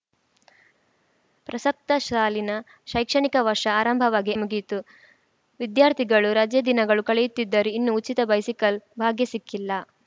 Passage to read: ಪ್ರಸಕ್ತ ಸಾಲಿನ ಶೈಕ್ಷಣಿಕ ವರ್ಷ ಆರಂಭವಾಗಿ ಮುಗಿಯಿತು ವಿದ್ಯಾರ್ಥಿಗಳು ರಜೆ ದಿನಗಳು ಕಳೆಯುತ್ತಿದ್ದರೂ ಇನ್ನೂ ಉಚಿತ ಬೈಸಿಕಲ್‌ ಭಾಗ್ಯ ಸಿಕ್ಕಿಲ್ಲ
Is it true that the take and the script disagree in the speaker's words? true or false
false